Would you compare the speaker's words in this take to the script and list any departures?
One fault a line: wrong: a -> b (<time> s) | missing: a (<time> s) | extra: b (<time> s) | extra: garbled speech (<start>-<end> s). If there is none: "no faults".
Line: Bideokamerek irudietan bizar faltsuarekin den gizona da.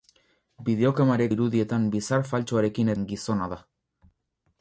no faults